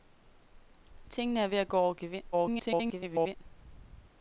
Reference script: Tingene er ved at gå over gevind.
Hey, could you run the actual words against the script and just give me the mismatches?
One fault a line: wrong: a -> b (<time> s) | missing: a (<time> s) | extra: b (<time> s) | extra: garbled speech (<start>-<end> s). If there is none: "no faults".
extra: garbled speech (2.3-3.4 s)